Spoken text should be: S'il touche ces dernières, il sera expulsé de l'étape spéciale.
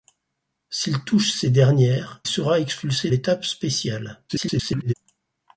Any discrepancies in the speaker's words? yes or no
yes